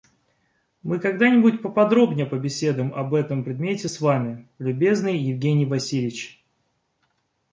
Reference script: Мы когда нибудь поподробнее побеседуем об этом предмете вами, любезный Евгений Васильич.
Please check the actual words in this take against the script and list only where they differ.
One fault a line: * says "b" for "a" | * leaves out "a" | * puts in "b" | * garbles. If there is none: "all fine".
* puts in "с"